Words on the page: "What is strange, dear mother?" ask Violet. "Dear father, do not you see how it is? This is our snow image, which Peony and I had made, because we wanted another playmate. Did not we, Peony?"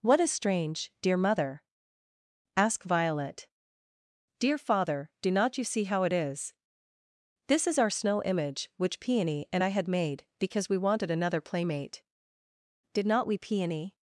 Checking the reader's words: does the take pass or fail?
pass